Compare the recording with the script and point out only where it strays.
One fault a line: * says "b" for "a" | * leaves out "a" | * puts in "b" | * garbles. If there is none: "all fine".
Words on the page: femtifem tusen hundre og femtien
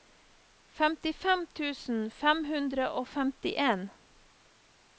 * puts in "fem"